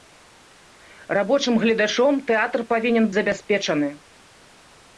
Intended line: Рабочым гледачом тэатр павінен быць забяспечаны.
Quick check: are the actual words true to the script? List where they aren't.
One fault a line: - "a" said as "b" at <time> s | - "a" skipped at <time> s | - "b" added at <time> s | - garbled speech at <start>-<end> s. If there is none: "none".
- "быць" skipped at 3.0 s